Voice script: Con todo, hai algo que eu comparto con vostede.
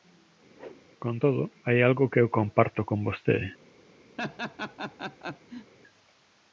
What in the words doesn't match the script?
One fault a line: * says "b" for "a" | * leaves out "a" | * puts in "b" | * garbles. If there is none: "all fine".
all fine